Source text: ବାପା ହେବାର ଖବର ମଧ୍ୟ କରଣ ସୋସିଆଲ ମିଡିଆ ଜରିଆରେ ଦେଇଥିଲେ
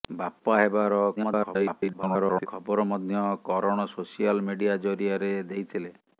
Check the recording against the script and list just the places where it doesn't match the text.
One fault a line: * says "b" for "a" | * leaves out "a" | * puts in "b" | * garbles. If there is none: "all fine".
* garbles